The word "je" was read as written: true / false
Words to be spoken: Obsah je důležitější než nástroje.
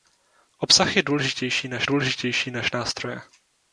true